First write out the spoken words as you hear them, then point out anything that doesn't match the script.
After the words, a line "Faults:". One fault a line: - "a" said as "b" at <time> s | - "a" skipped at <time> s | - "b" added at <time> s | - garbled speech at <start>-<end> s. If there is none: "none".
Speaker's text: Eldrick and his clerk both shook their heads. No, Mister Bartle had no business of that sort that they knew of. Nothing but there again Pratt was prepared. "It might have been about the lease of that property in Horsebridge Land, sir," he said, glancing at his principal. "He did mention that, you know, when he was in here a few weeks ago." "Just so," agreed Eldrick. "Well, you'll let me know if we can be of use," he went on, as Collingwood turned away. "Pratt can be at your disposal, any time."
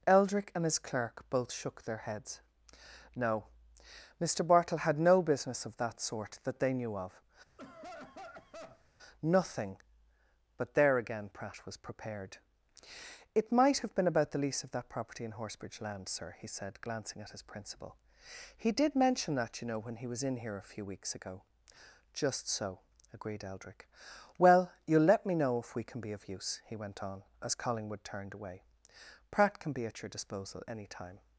Eldrick and his clerk both shook their heads. No, Mister Bartle had no business of that sort that they knew of. Nothing but there again Pratt was prepared. "It might have been about the lease of that property in Horsebridge Land, sir," he said, glancing at his principal. "He did mention that, you know, when he was in here a few weeks ago." "Just so," agreed Eldrick. "Well, you'll let me know if we can be of use," he went on, as Collingwood turned away. "Pratt can be at your disposal, any time."
Faults:
none